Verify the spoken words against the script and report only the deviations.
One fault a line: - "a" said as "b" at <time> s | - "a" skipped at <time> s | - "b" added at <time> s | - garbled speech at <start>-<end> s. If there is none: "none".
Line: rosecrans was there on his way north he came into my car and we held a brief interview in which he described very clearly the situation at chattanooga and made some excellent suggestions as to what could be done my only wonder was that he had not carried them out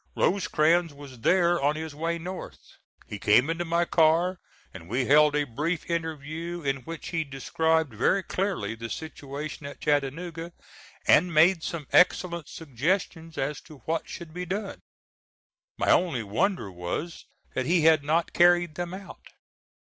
- "could" said as "should" at 14.1 s